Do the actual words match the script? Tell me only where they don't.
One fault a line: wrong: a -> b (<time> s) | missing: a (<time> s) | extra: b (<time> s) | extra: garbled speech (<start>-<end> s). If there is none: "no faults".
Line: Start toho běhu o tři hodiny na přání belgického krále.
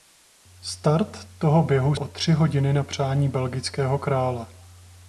no faults